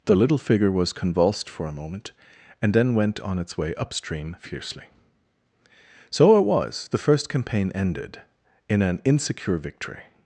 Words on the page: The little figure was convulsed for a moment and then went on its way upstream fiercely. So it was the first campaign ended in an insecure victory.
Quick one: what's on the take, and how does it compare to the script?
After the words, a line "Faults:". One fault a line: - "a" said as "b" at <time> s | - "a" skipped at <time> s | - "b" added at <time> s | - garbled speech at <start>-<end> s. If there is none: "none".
The little figure was convulsed for a moment and then went on its way upstream fiercely. So it was the first campaign ended in an insecure victory.
Faults:
none